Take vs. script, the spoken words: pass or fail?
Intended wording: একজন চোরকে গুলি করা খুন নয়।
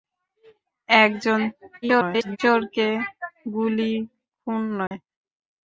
fail